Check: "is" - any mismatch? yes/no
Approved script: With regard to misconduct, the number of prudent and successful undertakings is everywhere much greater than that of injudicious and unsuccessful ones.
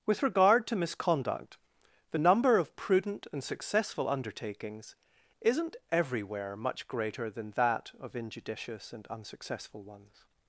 yes